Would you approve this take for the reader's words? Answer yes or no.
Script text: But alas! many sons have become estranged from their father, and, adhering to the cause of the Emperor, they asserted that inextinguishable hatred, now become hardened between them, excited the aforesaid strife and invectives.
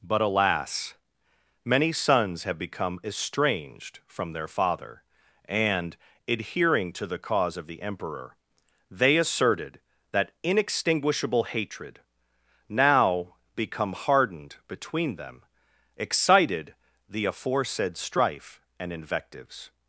yes